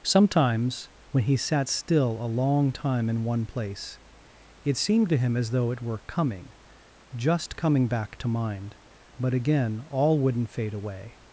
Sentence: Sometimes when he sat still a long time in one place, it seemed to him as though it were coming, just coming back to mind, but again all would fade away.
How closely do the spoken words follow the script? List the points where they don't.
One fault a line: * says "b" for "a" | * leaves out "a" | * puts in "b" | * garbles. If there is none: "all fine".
* says "wouldn't" for "would"